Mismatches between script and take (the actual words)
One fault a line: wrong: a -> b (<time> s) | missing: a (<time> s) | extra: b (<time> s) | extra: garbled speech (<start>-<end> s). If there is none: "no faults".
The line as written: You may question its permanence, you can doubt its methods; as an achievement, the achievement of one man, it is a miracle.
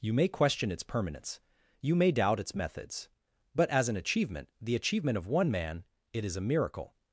wrong: can -> may (2.0 s)
extra: but (3.5 s)